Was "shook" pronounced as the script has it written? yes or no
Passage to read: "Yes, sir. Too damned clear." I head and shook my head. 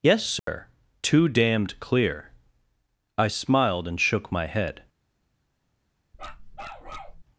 yes